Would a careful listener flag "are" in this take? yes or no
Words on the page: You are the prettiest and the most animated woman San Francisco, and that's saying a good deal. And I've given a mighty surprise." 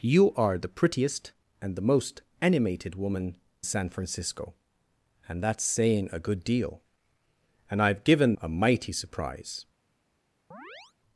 no